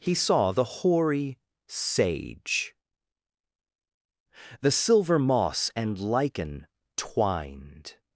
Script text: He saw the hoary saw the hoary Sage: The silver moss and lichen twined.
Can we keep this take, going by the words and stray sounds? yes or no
no